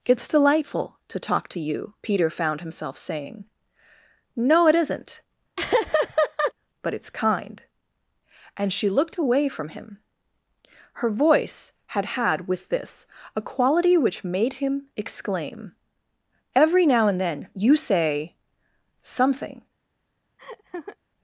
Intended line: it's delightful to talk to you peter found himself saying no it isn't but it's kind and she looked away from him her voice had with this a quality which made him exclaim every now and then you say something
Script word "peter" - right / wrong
right